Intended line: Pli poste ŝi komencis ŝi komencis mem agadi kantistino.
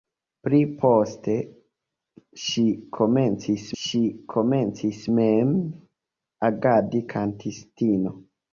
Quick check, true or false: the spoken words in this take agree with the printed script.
true